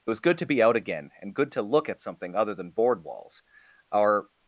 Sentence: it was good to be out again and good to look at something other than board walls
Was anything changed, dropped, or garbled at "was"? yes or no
no